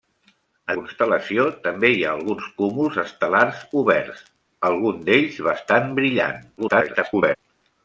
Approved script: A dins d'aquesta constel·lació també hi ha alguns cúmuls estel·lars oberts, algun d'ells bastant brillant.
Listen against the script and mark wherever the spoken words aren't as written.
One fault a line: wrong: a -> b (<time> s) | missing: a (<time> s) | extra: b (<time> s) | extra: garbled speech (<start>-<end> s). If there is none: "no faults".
missing: dins d'aquesta (0.8 s)
extra: garbled speech (6.6-7.4 s)